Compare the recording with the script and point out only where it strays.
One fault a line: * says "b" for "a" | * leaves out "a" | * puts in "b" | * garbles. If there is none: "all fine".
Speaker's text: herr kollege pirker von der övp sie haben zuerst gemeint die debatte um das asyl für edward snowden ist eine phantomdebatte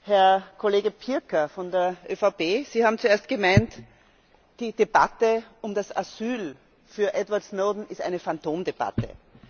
all fine